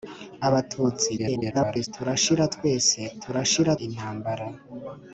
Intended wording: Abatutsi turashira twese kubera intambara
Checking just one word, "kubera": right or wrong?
wrong